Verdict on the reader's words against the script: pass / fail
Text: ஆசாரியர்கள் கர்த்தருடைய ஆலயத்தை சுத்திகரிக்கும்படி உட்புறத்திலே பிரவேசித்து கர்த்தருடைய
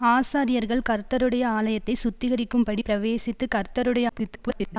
fail